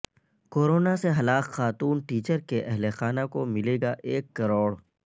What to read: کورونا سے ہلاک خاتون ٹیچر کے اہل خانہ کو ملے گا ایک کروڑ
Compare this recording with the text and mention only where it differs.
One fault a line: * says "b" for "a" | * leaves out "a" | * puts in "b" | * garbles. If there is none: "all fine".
all fine